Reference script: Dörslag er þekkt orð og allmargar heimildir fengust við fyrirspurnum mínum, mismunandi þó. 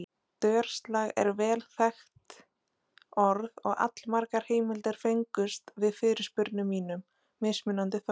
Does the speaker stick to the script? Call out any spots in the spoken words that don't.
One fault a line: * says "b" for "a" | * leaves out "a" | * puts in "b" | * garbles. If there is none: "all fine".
* puts in "vel"